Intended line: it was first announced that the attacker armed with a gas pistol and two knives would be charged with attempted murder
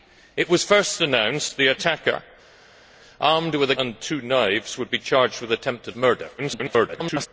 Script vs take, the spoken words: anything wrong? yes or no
yes